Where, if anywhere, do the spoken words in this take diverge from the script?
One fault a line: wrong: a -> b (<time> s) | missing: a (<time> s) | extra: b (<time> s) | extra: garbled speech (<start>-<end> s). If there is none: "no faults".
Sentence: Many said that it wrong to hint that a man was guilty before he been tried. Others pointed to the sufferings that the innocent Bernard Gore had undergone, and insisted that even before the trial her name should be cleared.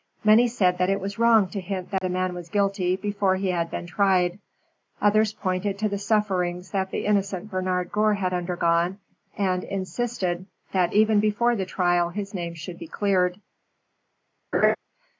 extra: was (1.0 s)
extra: had (3.5 s)
wrong: her -> his (12.1 s)